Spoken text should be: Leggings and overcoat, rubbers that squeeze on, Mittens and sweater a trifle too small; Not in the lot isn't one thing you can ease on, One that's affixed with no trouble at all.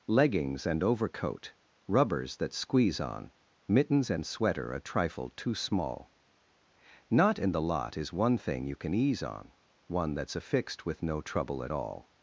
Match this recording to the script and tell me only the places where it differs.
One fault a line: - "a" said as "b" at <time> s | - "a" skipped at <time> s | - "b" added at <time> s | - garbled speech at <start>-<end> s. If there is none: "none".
- "isn't" said as "is" at 8.0 s